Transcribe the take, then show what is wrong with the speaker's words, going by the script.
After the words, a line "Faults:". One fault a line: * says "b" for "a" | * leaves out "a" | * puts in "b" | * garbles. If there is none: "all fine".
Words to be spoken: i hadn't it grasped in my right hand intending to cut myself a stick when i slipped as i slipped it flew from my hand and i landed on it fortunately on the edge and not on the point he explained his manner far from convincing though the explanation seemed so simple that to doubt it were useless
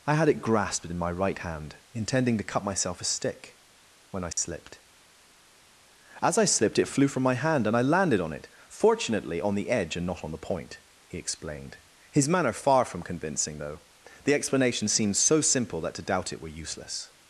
i had it grasped in my right hand intending to cut myself a stick when i slipped as i slipped it flew from my hand and i landed on it fortunately on the edge and not on the point he explained his manner far from convincing though the explanation seemed so simple that to doubt it were useless
Faults:
* says "had" for "hadn't"